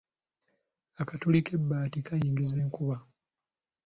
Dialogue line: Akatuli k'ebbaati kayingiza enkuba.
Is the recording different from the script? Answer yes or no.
no